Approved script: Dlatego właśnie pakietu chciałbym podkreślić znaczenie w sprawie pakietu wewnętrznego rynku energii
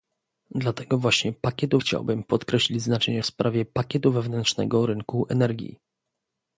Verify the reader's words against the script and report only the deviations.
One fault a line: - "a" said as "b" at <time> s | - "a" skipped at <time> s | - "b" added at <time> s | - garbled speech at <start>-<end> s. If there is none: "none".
none